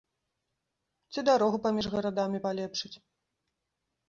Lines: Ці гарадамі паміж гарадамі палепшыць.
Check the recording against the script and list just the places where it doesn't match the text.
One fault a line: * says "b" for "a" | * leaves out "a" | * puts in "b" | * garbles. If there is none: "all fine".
* says "дарогу" for "гарадамі"